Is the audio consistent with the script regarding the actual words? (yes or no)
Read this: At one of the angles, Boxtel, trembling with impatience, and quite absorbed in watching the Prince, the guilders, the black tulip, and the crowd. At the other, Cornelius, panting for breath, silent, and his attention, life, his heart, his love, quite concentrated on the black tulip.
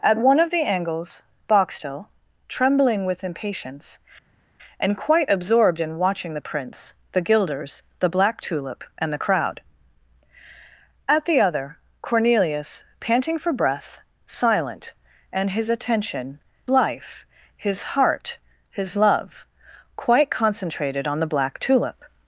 yes